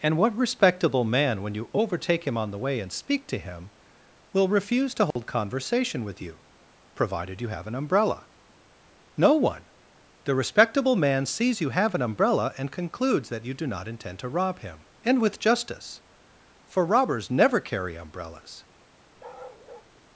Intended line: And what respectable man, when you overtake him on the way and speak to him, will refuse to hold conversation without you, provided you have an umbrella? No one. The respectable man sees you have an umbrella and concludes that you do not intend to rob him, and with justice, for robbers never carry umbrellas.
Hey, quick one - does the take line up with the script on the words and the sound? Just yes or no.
no